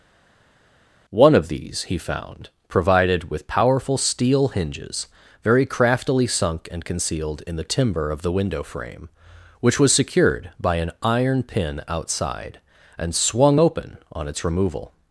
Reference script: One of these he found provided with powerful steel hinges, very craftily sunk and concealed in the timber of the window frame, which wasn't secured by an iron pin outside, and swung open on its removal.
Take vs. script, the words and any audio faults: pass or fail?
fail